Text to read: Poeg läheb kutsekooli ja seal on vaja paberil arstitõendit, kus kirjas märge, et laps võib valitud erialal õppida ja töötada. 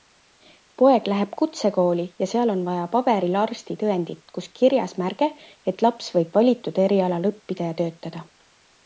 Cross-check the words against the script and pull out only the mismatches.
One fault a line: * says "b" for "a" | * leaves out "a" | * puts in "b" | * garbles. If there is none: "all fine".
all fine